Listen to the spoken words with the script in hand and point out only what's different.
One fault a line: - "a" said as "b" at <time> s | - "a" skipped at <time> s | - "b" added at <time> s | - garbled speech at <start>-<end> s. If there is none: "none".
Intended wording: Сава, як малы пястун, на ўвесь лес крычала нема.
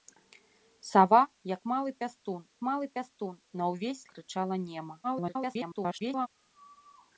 - "малы пястун" added at 2.7 s
- "лес" skipped at 4.0 s
- garbled speech at 5.0-6.3 s